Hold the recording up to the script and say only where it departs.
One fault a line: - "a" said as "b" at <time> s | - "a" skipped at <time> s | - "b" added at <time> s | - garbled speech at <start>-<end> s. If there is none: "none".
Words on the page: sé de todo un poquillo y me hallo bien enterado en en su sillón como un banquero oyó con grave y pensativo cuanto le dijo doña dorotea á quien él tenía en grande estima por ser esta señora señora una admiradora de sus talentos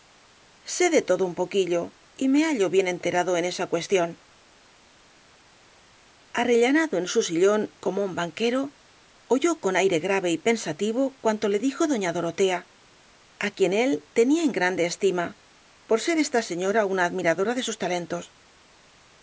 - "esa cuestión arrellanado" added at 3.5 s
- "aire" added at 9.8 s
- "señora" skipped at 16.9 s